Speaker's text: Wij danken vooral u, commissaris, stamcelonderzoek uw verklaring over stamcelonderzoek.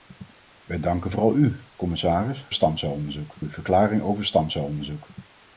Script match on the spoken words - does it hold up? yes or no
yes